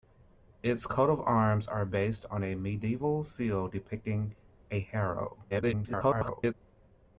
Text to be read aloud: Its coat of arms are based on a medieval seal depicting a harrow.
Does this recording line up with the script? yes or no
no